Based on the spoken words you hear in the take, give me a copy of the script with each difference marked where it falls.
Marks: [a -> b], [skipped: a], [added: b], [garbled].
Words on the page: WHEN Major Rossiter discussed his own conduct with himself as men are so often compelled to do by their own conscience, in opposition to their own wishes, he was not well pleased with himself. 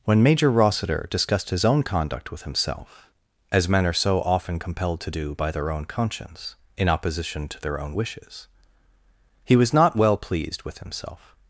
WHEN Major Rossiter discussed his own conduct with himself as men are so often compelled to do by their own conscience, in opposition to their own wishes, he was not well pleased with himself.